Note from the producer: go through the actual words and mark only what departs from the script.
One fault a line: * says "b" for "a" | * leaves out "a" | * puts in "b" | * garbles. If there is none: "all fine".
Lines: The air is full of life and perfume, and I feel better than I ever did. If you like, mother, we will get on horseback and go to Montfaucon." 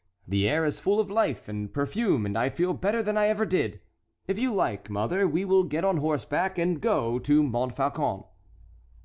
all fine